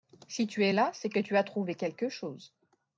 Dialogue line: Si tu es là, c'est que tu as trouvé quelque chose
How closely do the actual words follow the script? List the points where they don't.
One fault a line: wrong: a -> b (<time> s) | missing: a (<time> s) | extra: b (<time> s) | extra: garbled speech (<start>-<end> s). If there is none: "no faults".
no faults